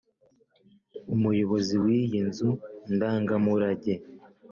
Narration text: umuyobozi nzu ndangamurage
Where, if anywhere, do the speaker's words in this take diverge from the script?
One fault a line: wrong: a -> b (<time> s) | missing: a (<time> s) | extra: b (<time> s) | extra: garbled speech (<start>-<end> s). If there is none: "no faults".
extra: w'iyi (1.8 s)